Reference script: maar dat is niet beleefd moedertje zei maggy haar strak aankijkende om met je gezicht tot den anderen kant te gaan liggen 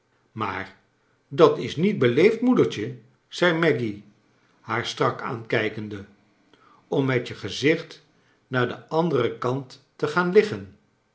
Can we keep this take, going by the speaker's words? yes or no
no